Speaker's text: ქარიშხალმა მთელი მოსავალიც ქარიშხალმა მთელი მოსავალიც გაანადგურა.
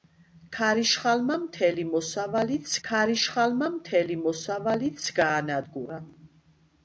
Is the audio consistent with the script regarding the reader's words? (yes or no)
yes